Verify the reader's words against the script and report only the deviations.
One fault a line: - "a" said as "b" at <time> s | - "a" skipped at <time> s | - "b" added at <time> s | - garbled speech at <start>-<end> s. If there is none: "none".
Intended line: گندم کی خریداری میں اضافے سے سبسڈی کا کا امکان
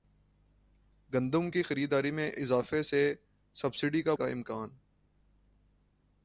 none